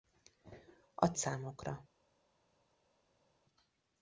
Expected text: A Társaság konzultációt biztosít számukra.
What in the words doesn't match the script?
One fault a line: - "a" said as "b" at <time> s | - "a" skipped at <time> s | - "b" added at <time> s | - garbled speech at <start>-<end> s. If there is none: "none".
- "Társaság konzultációt biztosít" skipped at 1.1 s